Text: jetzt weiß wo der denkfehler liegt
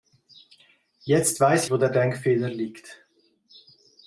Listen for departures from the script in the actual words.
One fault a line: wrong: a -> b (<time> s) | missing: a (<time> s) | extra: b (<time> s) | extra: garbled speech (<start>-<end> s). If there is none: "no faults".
no faults